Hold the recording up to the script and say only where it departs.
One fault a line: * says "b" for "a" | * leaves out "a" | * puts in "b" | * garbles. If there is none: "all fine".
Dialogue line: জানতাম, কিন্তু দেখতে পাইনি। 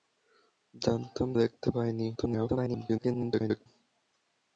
* leaves out "কিন্তু"
* garbles